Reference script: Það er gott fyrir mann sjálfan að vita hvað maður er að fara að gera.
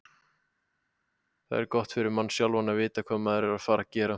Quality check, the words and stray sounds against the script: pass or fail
pass